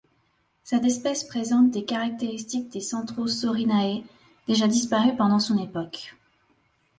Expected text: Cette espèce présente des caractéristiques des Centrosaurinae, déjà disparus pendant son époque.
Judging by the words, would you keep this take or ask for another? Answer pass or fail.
pass